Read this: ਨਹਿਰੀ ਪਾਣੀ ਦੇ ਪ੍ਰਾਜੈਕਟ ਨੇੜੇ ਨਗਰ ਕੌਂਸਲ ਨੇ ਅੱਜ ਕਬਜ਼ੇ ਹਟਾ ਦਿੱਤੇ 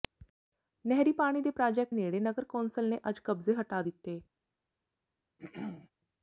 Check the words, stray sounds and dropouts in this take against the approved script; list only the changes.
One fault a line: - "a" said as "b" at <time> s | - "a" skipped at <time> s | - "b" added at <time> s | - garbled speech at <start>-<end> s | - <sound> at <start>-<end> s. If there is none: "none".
- throat clearing at 5.4-5.9 s